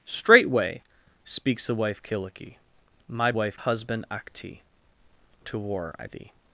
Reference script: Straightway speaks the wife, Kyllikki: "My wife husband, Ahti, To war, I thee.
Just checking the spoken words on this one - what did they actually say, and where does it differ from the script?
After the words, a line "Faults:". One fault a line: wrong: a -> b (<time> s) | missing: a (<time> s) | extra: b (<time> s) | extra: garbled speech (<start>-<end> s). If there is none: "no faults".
Straightway speaks the wife, Kyllikki: "My wife husband, Ahti, To war, I thee.
Faults:
no faults